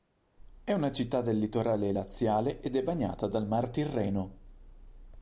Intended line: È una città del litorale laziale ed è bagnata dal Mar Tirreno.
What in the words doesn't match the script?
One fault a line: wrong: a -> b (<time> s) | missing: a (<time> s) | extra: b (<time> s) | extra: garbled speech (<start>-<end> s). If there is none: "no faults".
no faults